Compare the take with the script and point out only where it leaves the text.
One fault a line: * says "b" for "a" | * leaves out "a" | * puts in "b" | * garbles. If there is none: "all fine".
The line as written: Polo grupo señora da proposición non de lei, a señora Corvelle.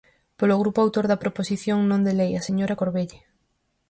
* says "autor" for "señora"